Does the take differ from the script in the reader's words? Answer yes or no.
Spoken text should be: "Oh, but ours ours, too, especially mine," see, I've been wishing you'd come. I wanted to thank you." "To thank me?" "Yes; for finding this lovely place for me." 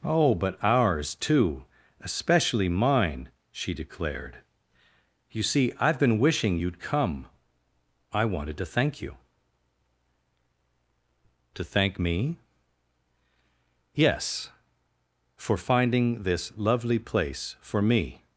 yes